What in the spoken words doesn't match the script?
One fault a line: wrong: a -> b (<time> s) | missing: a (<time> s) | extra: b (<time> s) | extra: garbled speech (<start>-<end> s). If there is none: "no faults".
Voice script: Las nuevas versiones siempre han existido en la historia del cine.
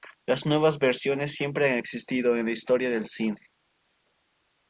no faults